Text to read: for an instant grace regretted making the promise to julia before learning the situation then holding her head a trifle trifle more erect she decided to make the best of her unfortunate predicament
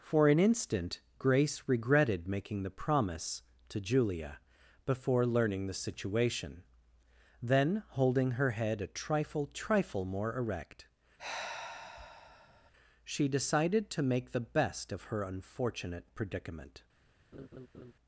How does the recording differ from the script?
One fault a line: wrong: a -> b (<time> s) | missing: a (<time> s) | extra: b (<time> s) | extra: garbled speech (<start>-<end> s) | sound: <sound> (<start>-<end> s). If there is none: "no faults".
sound: sigh (11.2-12.7 s)
sound: laugh (17.3-17.9 s)